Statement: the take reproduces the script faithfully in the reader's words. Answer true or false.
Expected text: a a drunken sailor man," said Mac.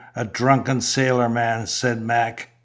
false